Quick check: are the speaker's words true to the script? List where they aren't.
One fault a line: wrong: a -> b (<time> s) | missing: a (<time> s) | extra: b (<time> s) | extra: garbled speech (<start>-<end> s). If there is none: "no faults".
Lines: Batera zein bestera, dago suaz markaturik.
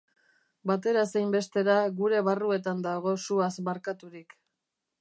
extra: gure barruetan (2.0 s)